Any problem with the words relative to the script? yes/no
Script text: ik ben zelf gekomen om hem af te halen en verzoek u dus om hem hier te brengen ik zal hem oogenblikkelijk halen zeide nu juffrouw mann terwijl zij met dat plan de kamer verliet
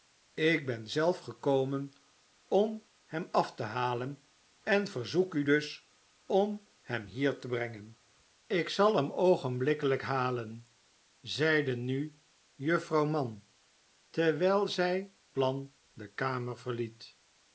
yes